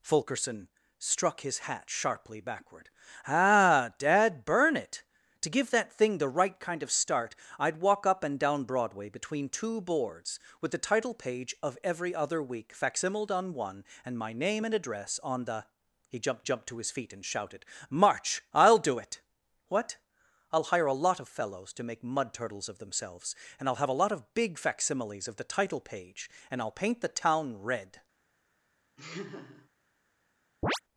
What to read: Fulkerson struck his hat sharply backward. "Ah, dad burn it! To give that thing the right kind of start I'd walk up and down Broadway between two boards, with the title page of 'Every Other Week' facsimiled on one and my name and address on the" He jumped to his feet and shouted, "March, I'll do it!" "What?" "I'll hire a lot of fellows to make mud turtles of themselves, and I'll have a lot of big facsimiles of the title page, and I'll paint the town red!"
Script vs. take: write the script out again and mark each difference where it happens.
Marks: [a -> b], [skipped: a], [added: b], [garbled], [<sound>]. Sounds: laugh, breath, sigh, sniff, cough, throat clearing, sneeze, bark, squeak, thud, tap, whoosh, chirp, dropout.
Fulkerson struck his hat sharply backward. "Ah, dad burn it! To give that thing the right kind of start I'd walk up and down Broadway between two boards, with the title page of 'Every Other Week' facsimiled on one and my name and address on the" He jumped [added: jumped] to his feet and shouted, "March, I'll do it!" "What?" "I'll hire a lot of fellows to make mud turtles of themselves, and I'll have a lot of big facsimiles of the title page, and I'll paint the town red!" [laugh] [chirp]